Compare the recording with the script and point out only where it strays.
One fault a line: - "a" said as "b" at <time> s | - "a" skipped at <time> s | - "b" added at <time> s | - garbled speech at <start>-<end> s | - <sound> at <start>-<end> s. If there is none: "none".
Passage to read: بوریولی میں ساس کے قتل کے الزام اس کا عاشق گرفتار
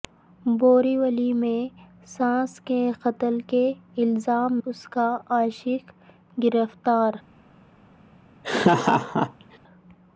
- laugh at 8.4-9.6 s